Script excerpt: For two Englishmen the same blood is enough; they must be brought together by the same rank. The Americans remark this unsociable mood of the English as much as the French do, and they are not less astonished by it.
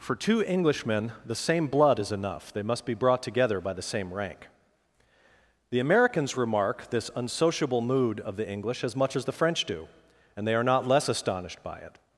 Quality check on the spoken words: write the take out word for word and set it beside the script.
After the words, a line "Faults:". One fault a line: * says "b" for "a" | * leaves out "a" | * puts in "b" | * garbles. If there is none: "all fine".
For two Englishmen the same blood is enough; they must be brought together by the same rank. The Americans remark this unsociable mood of the English as much as the French do, and they are not less astonished by it.
Faults:
all fine